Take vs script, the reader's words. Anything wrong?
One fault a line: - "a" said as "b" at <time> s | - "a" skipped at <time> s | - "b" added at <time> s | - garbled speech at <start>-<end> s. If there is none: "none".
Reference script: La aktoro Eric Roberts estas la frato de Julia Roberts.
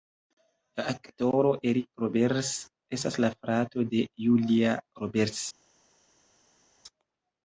none